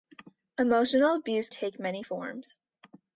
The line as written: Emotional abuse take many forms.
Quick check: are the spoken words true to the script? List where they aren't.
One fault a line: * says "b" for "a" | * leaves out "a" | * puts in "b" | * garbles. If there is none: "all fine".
all fine